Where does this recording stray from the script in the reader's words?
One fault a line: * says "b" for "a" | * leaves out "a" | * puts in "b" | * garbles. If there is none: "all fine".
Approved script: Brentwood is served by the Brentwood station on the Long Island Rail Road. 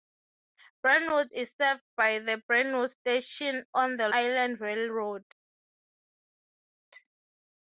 * leaves out "Long"